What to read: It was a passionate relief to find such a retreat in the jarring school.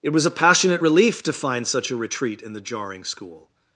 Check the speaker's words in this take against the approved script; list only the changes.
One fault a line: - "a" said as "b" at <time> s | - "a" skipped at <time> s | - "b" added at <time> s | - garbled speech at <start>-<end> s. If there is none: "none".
none